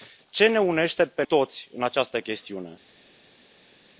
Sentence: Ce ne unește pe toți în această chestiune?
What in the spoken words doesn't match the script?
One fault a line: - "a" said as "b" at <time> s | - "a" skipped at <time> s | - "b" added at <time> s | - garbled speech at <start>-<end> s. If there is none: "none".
none